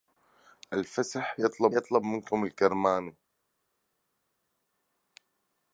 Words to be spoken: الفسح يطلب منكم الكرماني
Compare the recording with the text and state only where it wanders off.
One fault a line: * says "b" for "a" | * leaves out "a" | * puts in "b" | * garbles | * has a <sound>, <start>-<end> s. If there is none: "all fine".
* puts in "يطلب"